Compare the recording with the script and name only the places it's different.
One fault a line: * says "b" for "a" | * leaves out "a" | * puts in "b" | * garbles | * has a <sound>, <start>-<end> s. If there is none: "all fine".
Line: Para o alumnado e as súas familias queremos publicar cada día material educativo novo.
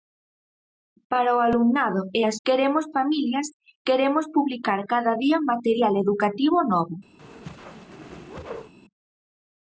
* says "queremos" for "súas"
* has a whoosh, 7.2-8.7 s